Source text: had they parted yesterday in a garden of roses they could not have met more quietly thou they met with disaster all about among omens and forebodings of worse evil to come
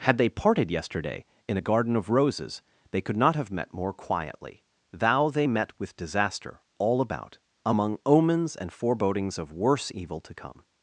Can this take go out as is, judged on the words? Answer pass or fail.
pass